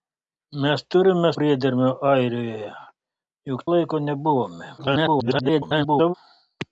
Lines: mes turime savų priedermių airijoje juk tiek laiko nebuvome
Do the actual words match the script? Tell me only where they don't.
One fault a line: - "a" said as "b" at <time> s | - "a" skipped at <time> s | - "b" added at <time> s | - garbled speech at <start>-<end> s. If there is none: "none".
- "savų" skipped at 1.3 s
- "tiek" skipped at 3.7 s
- garbled speech at 4.8-6.1 s